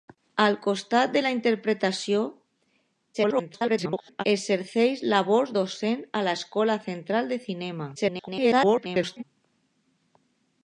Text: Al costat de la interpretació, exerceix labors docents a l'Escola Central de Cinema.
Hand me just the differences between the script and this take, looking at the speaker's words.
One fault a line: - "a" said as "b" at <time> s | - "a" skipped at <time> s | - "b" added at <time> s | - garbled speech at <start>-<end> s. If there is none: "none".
- garbled speech at 3.1-4.2 s
- garbled speech at 8.0-9.2 s